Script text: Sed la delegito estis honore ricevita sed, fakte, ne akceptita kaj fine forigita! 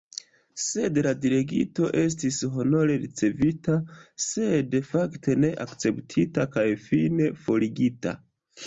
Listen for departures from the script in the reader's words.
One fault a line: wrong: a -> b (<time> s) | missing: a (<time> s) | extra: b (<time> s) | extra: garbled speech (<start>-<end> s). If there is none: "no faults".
no faults